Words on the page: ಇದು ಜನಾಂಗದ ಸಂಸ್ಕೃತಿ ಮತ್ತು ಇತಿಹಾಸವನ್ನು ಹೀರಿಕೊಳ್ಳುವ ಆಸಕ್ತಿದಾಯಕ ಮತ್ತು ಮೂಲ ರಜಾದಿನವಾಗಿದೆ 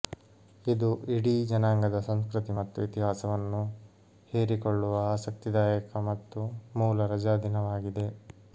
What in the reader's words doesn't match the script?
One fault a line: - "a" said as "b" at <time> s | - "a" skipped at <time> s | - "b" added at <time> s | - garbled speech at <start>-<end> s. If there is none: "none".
- "ಇಡೀ" added at 1.1 s